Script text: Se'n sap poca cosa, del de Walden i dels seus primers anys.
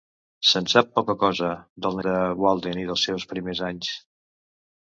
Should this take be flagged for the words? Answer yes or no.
no